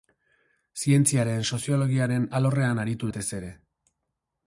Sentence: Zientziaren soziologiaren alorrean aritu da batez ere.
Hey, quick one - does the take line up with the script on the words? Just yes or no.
no